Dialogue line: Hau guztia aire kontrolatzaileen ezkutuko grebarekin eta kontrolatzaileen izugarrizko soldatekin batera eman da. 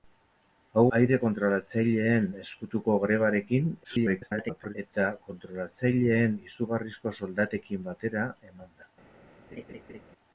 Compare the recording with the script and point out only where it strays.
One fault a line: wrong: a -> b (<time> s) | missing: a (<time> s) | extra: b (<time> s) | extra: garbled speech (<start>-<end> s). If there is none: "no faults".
missing: guztia (0.8 s)
extra: garbled speech (3.8-4.7 s)